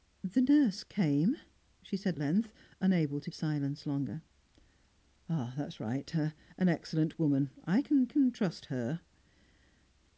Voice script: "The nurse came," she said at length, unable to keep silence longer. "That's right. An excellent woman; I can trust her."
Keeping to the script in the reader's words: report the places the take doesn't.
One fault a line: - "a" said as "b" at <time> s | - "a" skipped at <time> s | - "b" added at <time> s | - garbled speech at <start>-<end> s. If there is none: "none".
- "at" skipped at 2.2 s
- "keep" skipped at 3.3 s
- "can" added at 8.1 s